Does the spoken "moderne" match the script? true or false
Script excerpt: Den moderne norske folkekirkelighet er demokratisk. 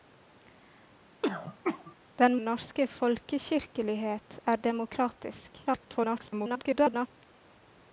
false